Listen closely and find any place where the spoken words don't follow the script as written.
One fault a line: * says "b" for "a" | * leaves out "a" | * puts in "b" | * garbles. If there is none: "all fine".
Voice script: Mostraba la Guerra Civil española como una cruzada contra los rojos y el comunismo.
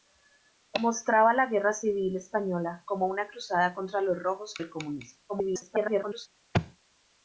* leaves out "y"
* garbles